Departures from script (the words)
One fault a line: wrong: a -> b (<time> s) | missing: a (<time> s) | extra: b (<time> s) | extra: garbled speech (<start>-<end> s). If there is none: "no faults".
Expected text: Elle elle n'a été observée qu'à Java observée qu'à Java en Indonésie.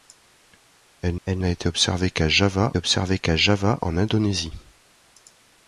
no faults